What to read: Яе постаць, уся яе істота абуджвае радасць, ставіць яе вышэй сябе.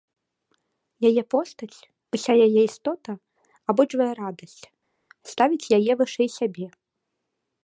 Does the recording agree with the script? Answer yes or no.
yes